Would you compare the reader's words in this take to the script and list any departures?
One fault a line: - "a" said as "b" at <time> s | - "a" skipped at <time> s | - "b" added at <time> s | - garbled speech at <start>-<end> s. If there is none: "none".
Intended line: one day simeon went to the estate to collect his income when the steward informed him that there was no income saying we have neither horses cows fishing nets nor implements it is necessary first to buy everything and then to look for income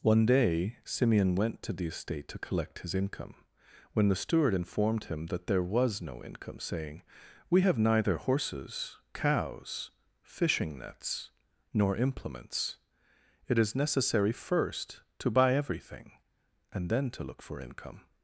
none